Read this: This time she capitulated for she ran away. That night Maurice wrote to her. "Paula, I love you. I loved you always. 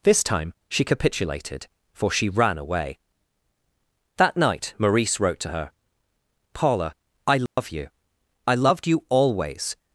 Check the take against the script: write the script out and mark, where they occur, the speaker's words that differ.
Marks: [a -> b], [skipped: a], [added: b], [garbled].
This time she capitulated for she ran away. That night Maurice wrote to her. "Paula, I love you. I loved you always.